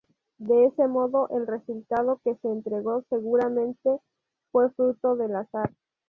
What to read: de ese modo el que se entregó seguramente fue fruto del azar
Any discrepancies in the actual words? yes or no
yes